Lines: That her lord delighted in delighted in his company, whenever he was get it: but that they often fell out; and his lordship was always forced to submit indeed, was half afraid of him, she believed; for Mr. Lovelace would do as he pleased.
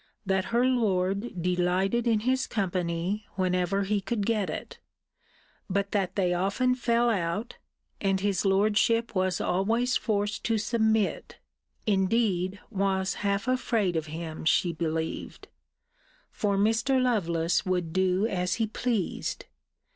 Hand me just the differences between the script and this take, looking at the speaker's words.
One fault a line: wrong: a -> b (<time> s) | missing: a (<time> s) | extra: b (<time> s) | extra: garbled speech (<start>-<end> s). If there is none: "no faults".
missing: delighted in (2.2 s)
wrong: was -> could (4.0 s)